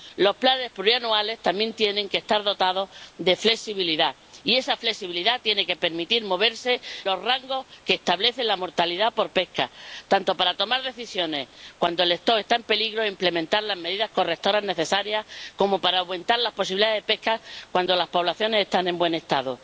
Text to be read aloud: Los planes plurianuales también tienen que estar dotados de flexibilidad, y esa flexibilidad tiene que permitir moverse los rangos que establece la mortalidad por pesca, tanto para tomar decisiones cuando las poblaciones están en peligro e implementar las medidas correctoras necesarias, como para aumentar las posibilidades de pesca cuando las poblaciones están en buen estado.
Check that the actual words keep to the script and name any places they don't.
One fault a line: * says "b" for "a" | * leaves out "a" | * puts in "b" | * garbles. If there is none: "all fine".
all fine